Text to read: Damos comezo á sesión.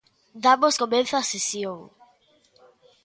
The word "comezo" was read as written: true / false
true